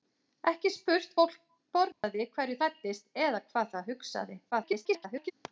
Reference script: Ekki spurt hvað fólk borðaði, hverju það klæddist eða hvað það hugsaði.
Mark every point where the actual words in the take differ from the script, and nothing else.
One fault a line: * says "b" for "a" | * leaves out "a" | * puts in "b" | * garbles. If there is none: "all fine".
* leaves out "hvað"
* leaves out "það"
* garbles